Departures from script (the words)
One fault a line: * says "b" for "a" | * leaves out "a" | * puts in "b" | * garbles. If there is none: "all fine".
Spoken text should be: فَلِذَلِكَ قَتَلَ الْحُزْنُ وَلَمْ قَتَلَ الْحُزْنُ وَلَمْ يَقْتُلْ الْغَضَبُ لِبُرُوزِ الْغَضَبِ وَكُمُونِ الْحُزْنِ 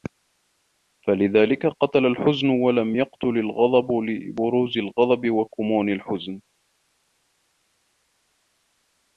* leaves out "قَتَلَ الْحُزْنُ وَلَمْ"